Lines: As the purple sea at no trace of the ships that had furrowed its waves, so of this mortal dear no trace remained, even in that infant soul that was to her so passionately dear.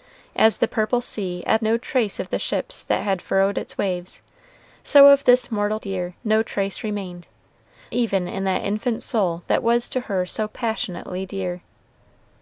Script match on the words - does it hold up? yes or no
yes